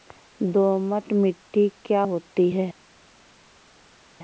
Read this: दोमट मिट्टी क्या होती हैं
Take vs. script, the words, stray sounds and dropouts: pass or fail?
pass